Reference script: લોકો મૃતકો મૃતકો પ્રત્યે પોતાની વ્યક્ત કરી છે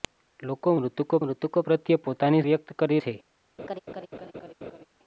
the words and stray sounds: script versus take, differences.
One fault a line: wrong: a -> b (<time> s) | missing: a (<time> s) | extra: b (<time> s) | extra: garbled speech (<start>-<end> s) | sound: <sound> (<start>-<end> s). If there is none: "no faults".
sound: laugh (3.6-4.9 s)